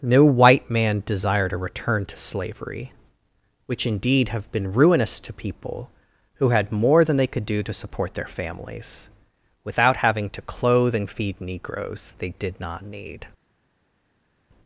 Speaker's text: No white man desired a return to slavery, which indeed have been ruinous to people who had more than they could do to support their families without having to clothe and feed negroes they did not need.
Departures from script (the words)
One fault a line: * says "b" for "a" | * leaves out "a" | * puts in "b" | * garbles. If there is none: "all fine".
all fine